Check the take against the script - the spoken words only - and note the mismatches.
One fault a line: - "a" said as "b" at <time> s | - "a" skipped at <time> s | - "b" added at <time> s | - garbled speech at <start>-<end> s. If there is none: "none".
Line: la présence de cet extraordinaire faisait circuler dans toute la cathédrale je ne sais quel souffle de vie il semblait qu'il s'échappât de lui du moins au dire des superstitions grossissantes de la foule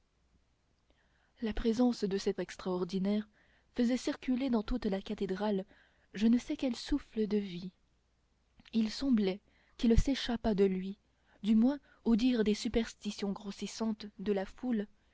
none